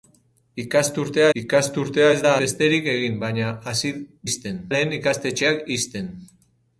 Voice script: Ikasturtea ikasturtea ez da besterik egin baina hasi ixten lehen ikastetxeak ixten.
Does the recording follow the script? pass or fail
pass